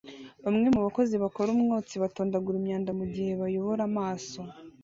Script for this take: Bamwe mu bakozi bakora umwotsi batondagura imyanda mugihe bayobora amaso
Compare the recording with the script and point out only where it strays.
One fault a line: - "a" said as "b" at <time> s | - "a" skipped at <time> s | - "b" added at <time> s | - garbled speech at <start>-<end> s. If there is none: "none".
none